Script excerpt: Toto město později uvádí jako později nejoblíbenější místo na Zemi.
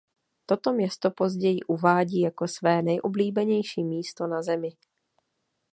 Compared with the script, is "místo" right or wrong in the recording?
right